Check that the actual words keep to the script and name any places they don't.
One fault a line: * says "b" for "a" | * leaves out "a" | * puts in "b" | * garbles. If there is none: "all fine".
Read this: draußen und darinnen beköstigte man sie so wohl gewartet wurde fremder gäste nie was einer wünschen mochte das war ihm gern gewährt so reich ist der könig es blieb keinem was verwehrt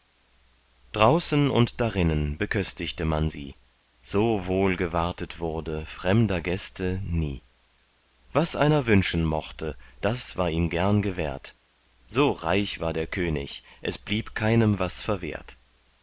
* says "war" for "ist"